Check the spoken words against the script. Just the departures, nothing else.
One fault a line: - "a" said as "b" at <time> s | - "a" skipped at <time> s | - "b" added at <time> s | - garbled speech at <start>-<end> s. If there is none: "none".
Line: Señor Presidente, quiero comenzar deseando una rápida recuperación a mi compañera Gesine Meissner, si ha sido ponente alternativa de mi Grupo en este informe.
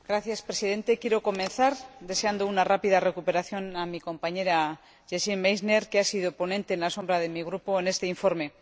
- "si" said as "que" at 5.9 s